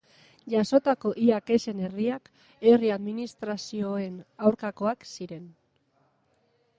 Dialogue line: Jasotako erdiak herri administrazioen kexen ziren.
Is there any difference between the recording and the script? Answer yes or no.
yes